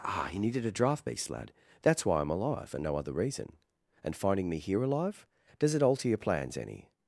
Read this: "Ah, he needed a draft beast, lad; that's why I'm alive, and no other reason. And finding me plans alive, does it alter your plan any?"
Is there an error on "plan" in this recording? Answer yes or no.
yes